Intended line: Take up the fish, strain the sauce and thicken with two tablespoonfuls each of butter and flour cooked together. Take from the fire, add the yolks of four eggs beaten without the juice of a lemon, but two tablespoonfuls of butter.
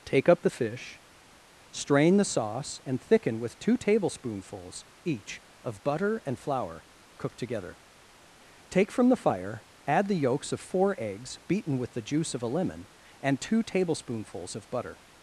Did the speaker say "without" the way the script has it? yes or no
no